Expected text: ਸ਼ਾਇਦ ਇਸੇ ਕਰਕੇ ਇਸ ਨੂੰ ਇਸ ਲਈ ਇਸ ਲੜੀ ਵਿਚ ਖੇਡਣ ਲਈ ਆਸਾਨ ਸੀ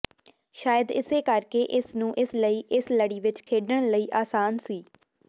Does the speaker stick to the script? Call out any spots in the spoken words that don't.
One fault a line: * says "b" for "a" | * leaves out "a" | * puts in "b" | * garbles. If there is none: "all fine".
all fine